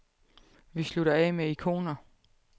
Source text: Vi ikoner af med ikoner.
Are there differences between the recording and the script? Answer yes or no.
yes